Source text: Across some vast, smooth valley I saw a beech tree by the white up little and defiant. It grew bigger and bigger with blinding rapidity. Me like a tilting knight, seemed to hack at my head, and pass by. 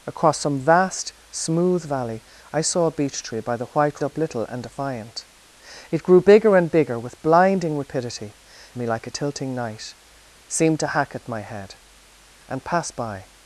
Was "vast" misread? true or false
false